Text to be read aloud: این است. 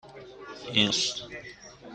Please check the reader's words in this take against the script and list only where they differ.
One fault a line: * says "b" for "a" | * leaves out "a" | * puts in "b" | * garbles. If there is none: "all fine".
all fine